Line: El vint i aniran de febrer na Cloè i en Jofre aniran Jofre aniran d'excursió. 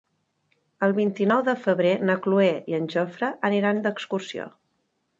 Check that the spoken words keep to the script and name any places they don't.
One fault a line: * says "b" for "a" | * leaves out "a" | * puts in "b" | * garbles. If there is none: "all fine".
* says "nou" for "aniran"
* leaves out "Jofre aniran"